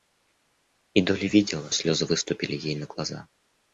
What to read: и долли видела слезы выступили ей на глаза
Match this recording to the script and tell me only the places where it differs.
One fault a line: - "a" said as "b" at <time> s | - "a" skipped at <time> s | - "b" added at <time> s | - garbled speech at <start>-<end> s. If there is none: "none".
none